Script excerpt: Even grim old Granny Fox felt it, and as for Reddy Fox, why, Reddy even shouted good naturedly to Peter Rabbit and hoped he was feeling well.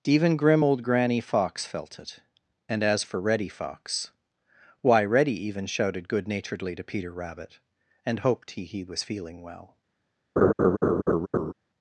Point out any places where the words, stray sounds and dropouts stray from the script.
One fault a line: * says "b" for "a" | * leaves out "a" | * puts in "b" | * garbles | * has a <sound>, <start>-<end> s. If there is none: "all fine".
* puts in "he"
* has a laugh, 10.4-11.5 s